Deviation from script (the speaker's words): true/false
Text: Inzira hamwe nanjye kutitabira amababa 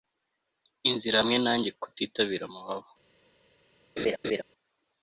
false